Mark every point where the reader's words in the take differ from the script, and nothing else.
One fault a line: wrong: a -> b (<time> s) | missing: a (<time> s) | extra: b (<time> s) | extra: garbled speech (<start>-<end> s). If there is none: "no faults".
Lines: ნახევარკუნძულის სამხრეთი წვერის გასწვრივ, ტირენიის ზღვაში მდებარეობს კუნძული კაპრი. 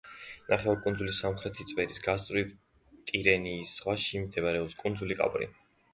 no faults